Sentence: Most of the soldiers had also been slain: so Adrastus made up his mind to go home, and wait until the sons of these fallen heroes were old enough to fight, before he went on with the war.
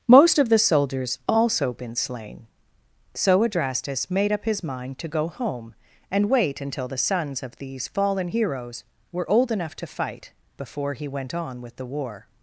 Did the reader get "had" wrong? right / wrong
wrong